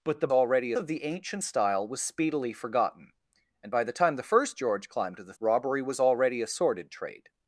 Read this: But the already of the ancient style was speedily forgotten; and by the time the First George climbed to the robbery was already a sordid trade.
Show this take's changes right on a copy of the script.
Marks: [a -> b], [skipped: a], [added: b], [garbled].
But the already of the ancient style was speedily forgotten; and by the time the First George climbed to the robbery was already a sordid trade.